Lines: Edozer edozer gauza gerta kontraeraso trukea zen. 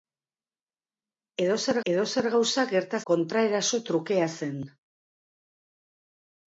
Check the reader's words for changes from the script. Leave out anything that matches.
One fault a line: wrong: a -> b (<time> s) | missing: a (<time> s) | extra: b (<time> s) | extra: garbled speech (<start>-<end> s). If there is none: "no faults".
no faults